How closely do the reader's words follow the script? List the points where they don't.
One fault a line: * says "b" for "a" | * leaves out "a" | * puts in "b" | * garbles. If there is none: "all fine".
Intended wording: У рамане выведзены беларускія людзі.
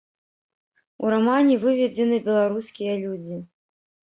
all fine